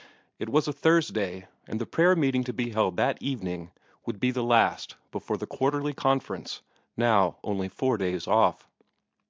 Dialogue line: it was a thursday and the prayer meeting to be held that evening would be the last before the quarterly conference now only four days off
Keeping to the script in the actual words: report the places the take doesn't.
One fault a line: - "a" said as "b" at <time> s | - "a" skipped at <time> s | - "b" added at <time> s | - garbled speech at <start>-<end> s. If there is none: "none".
none